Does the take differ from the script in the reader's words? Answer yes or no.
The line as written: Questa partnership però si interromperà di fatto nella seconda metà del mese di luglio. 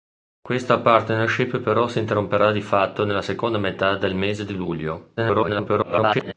yes